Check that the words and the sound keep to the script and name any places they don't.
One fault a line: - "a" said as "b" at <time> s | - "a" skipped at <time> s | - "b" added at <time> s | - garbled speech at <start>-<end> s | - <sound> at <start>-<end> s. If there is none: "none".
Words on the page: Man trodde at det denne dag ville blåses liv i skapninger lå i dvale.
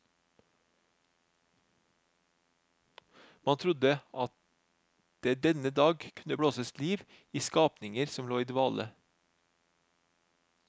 - "ville" said as "kunne" at 6.2 s
- "som" added at 8.1 s